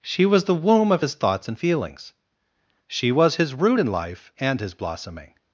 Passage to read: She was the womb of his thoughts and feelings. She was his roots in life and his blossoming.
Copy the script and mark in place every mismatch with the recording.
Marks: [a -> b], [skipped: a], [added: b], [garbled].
She was the womb of his thoughts and feelings. She was his [roots -> root] in life and his blossoming.